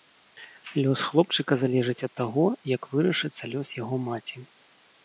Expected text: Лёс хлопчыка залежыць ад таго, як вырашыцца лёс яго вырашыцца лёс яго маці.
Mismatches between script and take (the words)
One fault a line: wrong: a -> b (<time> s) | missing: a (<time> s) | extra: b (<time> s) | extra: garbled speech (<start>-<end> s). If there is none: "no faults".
missing: вырашыцца лёс яго (4.0 s)